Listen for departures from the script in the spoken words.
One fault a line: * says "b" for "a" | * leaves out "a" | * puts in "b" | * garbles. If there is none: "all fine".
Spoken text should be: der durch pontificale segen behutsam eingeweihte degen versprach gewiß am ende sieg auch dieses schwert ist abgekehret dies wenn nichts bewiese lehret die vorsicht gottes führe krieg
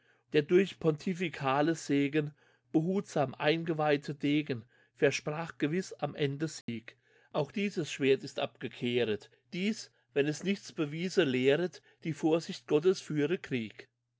* puts in "es"